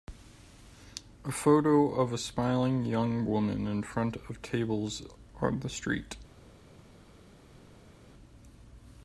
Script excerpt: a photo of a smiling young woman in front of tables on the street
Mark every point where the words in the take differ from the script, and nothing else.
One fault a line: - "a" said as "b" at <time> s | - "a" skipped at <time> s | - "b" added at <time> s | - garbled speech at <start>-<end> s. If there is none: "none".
none